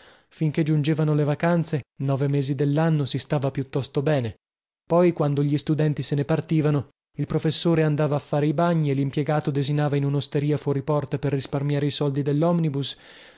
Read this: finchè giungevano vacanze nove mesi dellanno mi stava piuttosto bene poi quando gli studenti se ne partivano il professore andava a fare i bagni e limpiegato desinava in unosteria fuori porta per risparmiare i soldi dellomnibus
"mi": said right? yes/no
no